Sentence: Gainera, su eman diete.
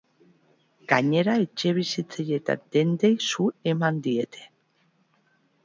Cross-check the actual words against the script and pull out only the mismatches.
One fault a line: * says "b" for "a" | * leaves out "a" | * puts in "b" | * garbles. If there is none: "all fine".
* puts in "etxebizitzei eta dendei"